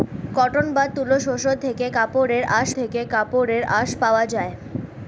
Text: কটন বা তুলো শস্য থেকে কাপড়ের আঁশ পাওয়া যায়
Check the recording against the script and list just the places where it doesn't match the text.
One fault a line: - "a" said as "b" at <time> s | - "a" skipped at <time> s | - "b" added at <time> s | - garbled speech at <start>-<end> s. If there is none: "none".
- "থেকে কাপড়ের আঁশ" added at 2.8 s